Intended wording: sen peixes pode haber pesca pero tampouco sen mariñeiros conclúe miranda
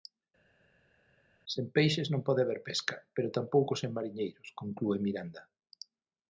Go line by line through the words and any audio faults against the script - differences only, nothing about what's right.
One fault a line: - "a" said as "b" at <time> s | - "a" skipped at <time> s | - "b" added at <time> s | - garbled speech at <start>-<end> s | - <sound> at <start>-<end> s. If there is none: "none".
- "non" added at 2.1 s